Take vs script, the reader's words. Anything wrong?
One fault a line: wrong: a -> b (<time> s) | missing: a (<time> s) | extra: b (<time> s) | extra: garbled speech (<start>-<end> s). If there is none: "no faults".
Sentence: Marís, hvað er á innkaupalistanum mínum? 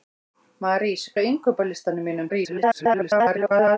missing: hvað (1.0 s)
extra: garbled speech (2.3-3.8 s)